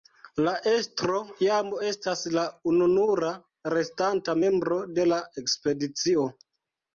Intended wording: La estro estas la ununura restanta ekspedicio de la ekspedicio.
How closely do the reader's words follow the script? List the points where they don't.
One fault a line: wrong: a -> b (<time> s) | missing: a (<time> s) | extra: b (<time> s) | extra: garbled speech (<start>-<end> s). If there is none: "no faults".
extra: jam (1.4 s)
wrong: ekspedicio -> membro (4.4 s)